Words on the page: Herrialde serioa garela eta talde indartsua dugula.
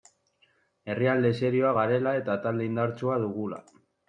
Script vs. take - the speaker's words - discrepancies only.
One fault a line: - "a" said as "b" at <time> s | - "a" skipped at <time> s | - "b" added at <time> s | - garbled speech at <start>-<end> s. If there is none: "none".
none